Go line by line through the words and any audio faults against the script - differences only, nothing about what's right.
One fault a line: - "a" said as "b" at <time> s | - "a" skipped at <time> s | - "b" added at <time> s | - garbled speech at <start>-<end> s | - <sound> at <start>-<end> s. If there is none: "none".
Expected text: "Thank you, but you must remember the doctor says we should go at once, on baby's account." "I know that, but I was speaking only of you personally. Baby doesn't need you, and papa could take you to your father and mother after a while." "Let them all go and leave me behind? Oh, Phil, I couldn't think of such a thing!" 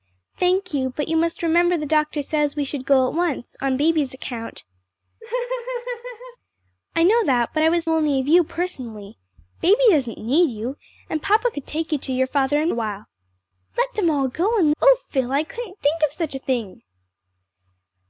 - laugh at 5.2-6.4 s
- "speaking" skipped at 7.8 s
- "mother after" skipped at 12.7 s
- "leave me behind" skipped at 14.7 s